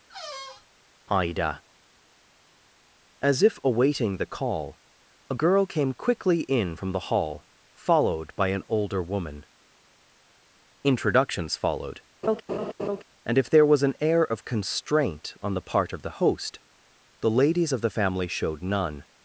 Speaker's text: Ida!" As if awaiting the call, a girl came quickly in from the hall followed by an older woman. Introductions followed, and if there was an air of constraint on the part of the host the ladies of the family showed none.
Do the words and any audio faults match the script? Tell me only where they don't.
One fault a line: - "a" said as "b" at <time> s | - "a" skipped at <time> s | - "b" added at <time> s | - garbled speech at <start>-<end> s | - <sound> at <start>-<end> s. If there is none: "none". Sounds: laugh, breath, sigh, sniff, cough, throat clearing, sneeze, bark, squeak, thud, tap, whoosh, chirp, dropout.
- squeak at 0.1-0.7 s
- laugh at 12.2-13.0 s